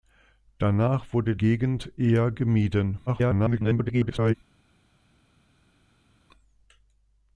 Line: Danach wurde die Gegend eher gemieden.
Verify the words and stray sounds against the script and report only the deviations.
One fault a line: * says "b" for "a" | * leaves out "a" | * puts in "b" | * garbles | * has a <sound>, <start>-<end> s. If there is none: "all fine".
* leaves out "die"
* garbles